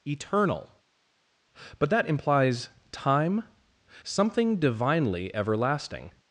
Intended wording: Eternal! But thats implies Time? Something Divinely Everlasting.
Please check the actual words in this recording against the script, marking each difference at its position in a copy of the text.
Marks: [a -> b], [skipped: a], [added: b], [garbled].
Eternal! But [thats -> that] implies Time? Something Divinely Everlasting.